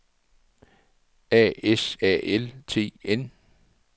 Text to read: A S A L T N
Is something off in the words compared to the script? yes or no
no